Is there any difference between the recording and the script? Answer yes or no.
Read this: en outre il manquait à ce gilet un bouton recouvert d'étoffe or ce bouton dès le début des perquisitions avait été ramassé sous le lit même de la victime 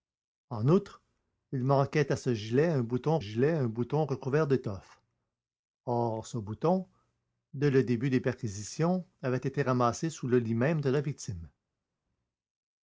yes